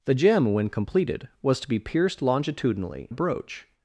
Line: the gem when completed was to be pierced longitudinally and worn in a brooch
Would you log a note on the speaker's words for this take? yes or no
yes